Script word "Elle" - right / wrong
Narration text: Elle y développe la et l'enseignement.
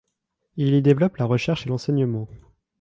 wrong